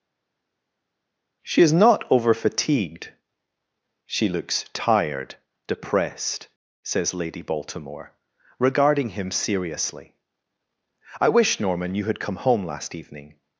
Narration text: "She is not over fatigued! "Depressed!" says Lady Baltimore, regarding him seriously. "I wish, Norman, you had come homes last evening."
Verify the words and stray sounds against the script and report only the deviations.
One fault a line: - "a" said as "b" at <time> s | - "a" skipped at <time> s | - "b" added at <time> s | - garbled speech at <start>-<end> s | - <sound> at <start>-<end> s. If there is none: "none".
- "She looks tired" added at 4.0 s
- "homes" said as "home" at 12.4 s